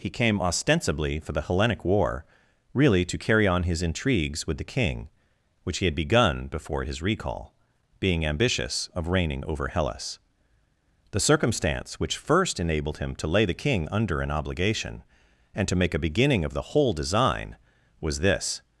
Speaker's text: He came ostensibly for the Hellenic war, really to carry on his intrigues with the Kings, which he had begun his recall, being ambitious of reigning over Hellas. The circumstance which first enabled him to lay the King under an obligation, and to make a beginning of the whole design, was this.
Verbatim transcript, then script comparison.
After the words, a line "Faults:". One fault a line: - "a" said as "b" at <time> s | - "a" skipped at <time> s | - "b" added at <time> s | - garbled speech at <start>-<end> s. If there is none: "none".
He came ostensibly for the Hellenic war, really to carry on his intrigues with the King, which he had begun before his recall, being ambitious of reigning over Hellas. The circumstance which first enabled him to lay the King under an obligation, and to make a beginning of the whole design, was this.
Faults:
- "Kings" said as "King" at 4.6 s
- "before" added at 6.5 s